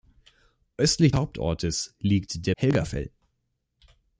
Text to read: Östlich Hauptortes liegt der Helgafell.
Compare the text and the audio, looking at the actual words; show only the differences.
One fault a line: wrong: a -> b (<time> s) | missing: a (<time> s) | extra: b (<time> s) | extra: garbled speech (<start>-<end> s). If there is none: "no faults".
no faults